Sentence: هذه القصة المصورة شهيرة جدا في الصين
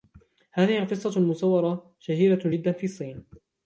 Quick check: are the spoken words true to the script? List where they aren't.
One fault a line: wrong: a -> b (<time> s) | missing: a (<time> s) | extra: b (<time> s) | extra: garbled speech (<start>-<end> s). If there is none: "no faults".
no faults